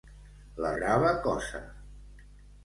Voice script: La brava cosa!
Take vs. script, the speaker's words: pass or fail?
pass